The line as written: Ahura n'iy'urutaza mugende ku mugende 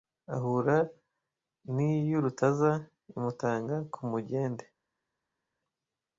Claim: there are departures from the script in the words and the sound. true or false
true